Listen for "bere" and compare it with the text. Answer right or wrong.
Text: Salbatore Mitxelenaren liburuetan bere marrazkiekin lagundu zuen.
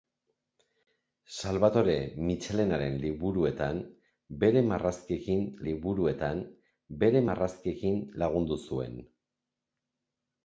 right